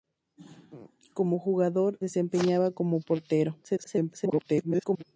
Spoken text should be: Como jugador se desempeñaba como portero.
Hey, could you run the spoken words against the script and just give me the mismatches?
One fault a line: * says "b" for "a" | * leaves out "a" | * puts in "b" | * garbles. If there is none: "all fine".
* leaves out "se"
* garbles